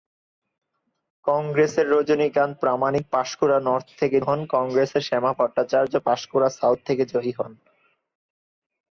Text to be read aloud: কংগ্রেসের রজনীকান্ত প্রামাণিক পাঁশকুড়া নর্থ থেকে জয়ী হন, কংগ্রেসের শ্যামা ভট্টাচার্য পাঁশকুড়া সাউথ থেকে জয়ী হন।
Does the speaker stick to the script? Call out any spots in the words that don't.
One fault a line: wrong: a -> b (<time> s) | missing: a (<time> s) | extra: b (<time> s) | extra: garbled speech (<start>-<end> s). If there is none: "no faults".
missing: জয়ী (4.2 s)